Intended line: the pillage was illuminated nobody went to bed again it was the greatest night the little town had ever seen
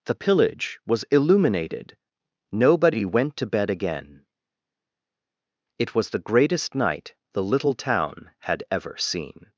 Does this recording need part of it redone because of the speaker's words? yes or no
no